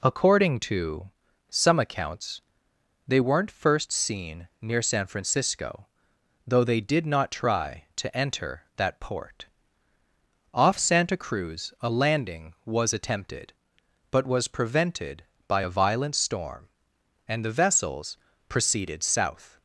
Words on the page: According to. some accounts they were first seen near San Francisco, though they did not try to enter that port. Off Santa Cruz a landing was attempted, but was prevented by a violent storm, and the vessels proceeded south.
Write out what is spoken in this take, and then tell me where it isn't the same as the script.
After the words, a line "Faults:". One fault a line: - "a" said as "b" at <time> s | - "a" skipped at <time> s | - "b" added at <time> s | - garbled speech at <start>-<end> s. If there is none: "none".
According to. some accounts they weren't first seen near San Francisco, though they did not try to enter that port. Off Santa Cruz a landing was attempted, but was prevented by a violent storm, and the vessels proceeded south.
Faults:
- "were" said as "weren't" at 3.2 s